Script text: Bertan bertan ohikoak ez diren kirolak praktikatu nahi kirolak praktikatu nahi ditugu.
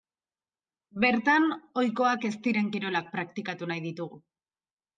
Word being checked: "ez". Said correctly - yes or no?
yes